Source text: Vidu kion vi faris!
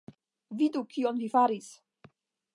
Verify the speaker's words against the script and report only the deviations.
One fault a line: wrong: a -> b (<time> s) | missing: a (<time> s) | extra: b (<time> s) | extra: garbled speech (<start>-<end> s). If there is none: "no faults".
no faults